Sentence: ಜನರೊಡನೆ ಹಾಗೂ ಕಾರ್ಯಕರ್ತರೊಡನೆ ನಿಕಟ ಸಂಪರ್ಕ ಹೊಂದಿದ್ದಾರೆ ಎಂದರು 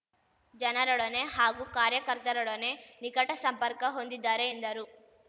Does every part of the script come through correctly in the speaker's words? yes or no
yes